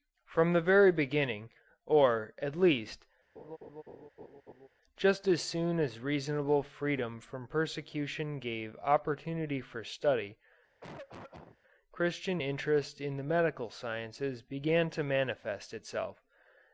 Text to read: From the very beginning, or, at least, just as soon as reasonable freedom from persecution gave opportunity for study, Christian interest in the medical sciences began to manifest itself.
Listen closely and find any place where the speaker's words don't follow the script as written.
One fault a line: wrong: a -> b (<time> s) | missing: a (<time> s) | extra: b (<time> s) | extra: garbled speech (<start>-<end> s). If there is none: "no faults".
no faults